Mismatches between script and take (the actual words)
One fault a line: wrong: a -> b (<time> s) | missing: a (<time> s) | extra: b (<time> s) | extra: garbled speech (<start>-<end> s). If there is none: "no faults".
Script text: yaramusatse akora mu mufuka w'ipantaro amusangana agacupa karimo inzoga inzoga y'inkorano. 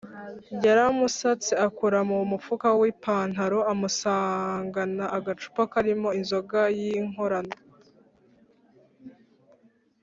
missing: inzoga (6.6 s)